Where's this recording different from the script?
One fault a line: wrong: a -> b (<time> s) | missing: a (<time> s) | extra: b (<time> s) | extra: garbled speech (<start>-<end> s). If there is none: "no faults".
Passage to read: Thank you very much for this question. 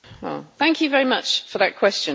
wrong: this -> that (1.6 s)